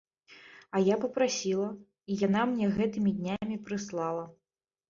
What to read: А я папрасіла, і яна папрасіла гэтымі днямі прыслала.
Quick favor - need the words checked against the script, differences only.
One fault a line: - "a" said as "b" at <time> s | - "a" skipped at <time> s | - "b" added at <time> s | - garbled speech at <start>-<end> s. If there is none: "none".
- "папрасіла" said as "мне" at 2.5 s